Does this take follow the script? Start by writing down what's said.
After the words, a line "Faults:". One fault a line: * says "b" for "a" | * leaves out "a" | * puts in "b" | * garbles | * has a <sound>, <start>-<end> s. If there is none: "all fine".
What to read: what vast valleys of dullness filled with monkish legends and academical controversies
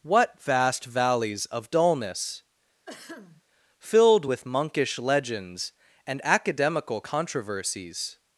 what vast valleys of dullness filled with monkish legends and academical controversies
Faults:
* has a throat clearing, 2.9-3.4 s